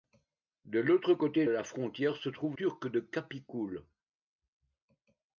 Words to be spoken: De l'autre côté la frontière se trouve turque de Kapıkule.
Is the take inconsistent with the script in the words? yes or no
no